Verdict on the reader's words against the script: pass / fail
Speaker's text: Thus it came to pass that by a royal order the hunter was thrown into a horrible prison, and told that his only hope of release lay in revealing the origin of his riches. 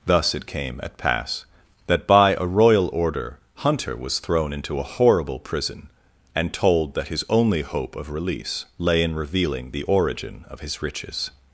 fail